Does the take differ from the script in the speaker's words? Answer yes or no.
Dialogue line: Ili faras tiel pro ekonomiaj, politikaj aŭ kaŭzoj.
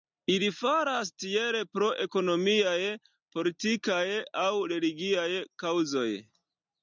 yes